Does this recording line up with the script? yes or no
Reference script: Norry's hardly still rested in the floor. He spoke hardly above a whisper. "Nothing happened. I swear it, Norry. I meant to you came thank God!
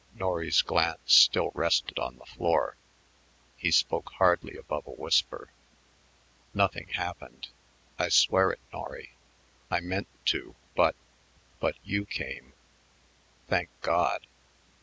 no